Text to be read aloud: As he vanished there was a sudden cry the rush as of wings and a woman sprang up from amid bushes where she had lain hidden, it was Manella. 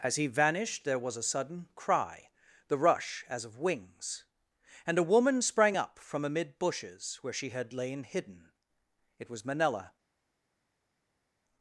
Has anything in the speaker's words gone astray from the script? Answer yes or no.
no